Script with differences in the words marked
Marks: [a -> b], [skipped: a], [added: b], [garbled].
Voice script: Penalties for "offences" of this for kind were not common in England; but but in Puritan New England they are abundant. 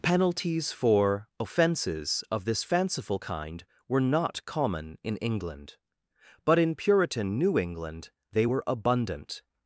Penalties for "offences" of this [for -> fanciful] kind were not common in England; but [skipped: but] in Puritan New England they [are -> were] abundant.